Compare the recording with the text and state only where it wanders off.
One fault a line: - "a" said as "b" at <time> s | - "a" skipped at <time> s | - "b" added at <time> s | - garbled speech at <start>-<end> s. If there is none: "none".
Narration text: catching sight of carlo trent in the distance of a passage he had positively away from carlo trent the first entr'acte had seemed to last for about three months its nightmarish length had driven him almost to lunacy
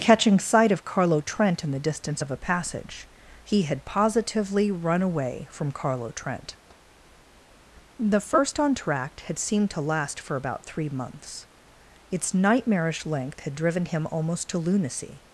- "run" added at 4.7 s